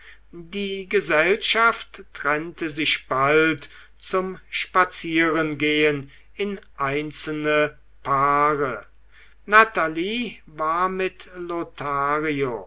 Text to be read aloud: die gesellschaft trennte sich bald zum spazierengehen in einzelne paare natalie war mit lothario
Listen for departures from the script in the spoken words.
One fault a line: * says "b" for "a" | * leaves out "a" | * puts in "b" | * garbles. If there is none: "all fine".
all fine